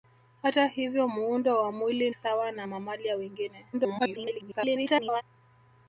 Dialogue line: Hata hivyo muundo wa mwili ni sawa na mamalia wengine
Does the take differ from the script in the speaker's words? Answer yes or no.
yes